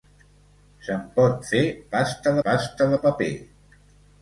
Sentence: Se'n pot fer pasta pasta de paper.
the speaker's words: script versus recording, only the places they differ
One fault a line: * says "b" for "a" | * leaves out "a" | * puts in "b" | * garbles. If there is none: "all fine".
all fine